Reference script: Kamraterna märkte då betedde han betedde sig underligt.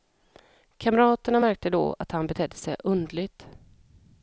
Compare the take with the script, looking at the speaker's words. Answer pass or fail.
fail